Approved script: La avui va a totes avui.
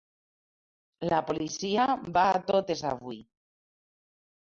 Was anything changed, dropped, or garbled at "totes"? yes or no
no